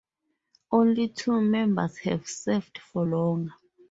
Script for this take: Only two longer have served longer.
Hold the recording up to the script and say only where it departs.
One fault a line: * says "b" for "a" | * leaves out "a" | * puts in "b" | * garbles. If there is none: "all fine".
* says "members" for "longer"
* puts in "for"